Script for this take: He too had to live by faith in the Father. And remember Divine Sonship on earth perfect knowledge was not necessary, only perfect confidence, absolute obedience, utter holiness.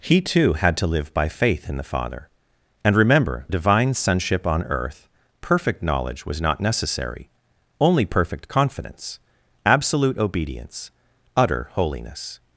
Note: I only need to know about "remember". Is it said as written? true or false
true